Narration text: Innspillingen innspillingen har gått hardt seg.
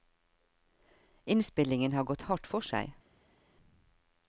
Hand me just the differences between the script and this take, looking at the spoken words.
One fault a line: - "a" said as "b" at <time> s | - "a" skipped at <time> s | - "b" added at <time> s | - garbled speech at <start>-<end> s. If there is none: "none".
- "innspillingen" skipped at 1.9 s
- "for" added at 2.5 s